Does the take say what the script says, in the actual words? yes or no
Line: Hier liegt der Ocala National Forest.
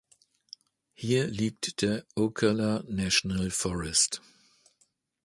yes